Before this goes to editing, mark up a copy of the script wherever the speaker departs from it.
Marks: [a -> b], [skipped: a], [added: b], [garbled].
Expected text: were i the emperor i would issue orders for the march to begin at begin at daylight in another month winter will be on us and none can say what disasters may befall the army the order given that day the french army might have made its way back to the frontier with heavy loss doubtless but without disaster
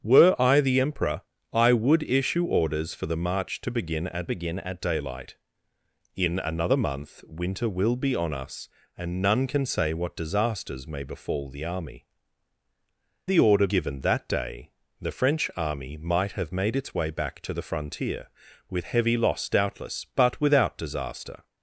were i the emperor i would issue orders for the march to begin at begin at daylight in another month winter will be on us and none can say what disasters may befall the army the order given that day the french army might have made its way back to the frontier with heavy loss doubtless but without disaster